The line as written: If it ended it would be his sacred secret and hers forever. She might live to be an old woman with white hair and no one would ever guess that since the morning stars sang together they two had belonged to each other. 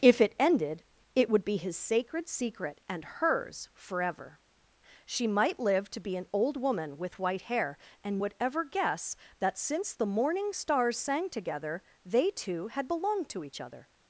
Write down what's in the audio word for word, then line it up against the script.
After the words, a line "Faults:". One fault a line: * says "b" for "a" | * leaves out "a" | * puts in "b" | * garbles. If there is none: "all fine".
If it ended it would be his sacred secret and hers forever. She might live to be an old woman with white hair and would ever guess that since the morning stars sang together they two had belonged to each other.
Faults:
* leaves out "no one"